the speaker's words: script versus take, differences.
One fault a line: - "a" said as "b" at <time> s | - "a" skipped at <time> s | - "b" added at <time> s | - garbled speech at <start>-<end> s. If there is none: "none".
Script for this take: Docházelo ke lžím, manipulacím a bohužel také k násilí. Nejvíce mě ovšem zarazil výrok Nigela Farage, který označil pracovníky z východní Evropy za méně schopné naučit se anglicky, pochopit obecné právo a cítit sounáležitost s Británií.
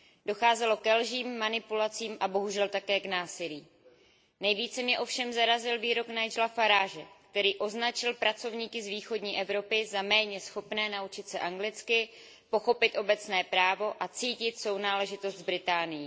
none